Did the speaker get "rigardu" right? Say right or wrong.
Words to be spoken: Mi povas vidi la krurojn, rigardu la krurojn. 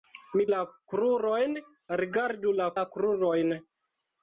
right